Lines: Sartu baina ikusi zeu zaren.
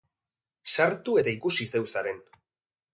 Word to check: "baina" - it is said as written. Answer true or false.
false